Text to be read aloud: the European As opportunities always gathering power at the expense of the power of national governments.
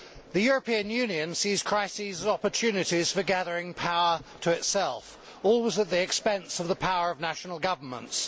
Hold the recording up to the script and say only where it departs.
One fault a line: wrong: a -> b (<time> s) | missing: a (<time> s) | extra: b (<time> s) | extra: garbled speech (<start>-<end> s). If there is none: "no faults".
extra: Union sees crises (0.9 s)
wrong: always -> for (3.1 s)
extra: to itself always (4.4 s)